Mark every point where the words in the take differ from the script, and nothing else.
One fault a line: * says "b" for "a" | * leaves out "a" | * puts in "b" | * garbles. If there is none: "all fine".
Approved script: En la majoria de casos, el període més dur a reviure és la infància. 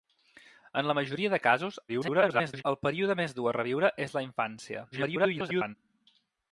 * garbles
* garbles